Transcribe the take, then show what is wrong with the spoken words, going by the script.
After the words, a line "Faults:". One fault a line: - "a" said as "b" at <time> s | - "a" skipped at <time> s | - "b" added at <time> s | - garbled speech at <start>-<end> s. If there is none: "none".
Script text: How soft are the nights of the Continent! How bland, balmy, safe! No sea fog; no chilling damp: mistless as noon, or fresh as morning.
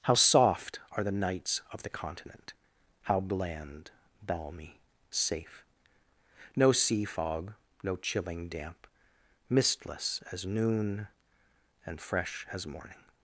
How soft are the nights of the Continent! How bland, balmy, safe! No sea fog; no chilling damp: mistless as noon, and fresh as morning.
Faults:
- "or" said as "and" at 11.9 s